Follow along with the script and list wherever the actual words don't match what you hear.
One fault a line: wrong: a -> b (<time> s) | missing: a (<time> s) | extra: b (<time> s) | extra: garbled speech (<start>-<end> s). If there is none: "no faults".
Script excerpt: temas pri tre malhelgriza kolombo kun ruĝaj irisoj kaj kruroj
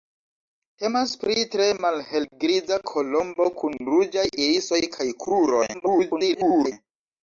extra: garbled speech (5.7-6.7 s)